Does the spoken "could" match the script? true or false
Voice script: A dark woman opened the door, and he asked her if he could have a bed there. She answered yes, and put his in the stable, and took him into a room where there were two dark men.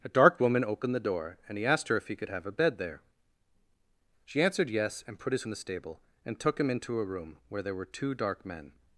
true